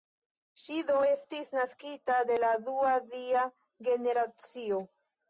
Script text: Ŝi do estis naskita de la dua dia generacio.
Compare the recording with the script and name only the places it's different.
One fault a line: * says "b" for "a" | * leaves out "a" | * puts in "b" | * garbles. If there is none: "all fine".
all fine